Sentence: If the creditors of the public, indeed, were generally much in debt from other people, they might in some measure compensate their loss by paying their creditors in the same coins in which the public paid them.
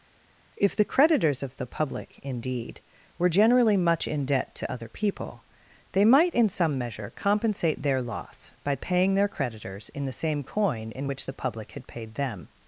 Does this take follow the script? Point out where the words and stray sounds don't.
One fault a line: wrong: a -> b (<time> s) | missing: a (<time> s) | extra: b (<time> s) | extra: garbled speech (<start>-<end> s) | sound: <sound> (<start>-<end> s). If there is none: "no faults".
wrong: from -> to (4.5 s)
wrong: coins -> coin (10.4 s)
extra: had (11.7 s)